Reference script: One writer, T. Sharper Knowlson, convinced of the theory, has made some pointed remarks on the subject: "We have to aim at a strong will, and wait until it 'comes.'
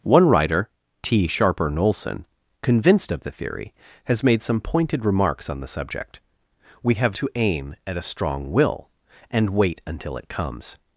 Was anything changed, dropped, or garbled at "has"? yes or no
no